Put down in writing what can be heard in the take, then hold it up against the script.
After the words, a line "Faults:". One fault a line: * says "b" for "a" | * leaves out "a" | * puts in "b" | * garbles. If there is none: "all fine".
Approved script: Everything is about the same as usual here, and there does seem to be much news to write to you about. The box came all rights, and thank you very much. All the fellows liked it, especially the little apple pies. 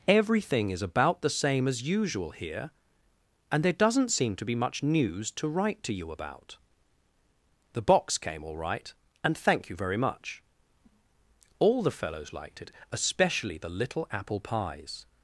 Everything is about the same as usual here, and there doesn't seem to be much news to write to you about. The box came all right, and thank you very much. All the fellows liked it, especially the little apple pies.
Faults:
* says "doesn't" for "does"
* says "right" for "rights"